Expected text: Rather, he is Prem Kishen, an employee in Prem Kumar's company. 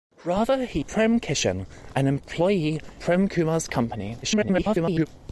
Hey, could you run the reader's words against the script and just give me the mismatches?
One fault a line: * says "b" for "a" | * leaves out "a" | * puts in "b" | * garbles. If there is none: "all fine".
* leaves out "is"
* leaves out "in"
* garbles